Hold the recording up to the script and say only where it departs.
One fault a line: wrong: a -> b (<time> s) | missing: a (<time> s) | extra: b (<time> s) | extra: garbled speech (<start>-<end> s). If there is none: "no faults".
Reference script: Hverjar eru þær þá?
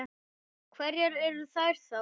no faults